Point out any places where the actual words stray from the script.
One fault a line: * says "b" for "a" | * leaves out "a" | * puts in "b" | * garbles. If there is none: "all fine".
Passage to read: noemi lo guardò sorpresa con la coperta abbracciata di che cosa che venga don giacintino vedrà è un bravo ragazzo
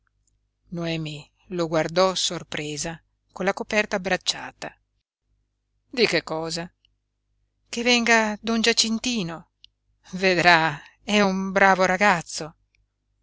all fine